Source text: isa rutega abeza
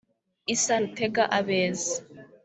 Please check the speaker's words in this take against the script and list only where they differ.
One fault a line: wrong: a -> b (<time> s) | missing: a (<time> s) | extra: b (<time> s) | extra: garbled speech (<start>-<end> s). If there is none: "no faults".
no faults